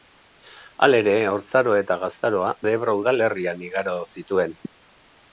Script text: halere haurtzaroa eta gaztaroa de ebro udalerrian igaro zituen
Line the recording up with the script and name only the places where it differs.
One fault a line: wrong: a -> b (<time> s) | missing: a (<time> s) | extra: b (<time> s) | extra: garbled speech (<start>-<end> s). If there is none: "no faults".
no faults